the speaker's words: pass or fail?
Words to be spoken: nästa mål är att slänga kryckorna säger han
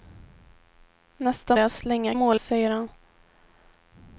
fail